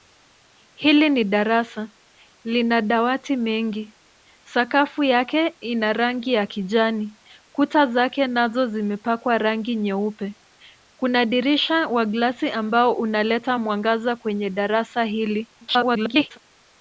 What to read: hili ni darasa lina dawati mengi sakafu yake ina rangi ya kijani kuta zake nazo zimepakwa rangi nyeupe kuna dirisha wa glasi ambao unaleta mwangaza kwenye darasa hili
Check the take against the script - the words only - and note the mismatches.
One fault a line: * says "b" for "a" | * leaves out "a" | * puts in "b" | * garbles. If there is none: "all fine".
* garbles